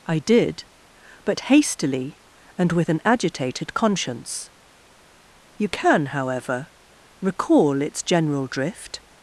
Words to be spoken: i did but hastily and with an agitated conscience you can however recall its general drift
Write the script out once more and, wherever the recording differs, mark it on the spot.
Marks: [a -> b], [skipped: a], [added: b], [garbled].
i did but hastily and with an agitated conscience you can however recall its general drift